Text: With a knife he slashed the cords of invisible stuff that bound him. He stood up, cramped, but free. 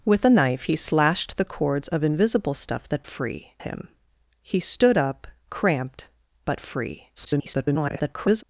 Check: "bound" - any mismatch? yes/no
yes